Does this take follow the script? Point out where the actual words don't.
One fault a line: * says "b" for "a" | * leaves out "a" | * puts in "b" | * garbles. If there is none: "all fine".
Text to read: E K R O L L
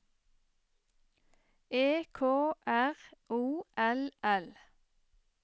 all fine